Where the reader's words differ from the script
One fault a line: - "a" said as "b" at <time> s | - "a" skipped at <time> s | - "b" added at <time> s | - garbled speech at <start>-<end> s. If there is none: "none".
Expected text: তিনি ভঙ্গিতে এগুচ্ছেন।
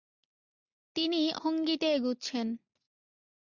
none